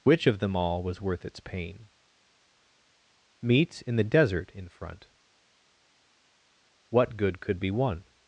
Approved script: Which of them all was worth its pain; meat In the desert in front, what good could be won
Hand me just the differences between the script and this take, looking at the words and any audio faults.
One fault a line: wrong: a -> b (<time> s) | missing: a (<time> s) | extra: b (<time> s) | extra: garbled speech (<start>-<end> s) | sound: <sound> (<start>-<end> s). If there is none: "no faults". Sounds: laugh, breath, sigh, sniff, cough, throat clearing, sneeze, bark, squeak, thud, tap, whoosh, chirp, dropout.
no faults